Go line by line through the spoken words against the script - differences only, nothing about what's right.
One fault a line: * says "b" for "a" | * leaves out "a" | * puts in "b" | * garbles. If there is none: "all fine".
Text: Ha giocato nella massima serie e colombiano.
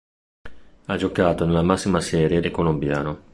all fine